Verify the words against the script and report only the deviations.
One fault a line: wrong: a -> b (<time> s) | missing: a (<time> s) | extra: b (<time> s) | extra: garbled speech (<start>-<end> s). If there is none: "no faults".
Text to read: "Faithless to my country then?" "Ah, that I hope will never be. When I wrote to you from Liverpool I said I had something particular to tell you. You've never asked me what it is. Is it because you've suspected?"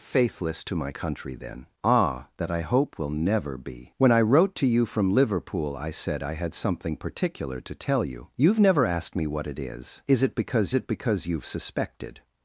extra: it because (10.7 s)